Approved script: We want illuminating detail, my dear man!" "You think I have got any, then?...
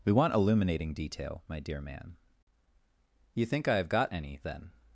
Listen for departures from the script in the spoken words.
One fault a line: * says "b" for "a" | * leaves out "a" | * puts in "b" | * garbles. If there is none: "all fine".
all fine